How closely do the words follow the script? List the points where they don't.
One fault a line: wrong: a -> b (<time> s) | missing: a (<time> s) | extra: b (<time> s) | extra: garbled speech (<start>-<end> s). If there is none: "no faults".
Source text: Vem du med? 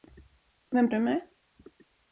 no faults